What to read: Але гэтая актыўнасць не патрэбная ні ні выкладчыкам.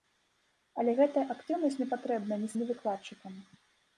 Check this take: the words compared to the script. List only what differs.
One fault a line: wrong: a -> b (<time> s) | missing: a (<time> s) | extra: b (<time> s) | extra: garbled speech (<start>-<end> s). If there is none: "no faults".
no faults